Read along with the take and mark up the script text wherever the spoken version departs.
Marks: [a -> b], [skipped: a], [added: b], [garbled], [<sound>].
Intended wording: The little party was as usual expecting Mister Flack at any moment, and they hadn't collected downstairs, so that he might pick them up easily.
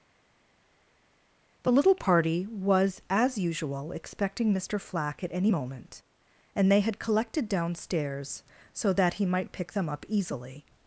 The little party was as usual expecting Mister Flack at any moment, and they [hadn't -> had] collected downstairs, so that he might pick them up easily.